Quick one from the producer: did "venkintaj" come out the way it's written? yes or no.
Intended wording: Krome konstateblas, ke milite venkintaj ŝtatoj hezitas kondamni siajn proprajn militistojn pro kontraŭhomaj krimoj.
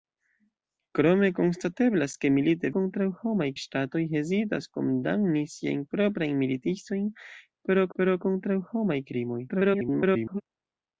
no